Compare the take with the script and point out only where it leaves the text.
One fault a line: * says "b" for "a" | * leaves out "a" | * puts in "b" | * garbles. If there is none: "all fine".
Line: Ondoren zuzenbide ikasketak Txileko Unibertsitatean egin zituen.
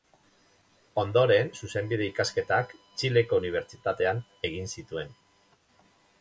all fine